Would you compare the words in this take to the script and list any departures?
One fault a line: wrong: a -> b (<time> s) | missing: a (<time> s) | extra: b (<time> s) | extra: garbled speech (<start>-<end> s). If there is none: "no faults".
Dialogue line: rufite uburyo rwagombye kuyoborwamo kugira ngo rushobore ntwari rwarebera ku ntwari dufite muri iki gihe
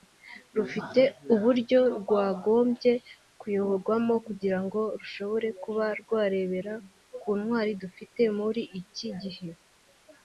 wrong: ntwari -> kuba (5.6 s)